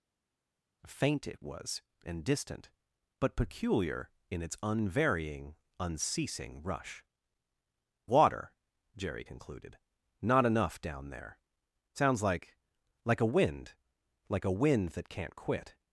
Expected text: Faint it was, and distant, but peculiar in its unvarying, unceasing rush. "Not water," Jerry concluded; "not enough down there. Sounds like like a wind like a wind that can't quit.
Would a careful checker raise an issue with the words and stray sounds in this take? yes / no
yes